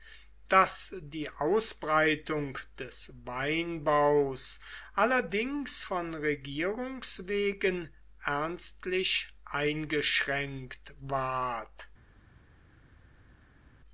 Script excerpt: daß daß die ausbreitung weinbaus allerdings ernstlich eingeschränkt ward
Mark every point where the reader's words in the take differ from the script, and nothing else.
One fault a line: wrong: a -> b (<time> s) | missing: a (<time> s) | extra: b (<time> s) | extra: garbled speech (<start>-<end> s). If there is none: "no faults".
missing: daß (0.9 s)
extra: des (2.8 s)
extra: von regierungs wegen (5.8 s)